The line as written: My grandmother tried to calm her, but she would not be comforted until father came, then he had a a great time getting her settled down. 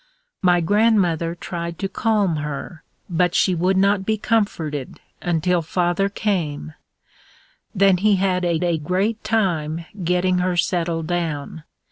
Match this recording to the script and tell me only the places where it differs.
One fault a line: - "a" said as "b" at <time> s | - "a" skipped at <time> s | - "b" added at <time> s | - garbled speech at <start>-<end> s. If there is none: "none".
none